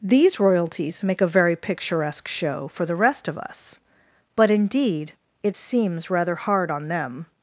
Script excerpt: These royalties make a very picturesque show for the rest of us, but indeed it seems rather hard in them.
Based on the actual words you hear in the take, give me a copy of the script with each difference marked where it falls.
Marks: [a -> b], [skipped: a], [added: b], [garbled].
These royalties make a very picturesque show for the rest of us, but indeed it seems rather hard [in -> on] them.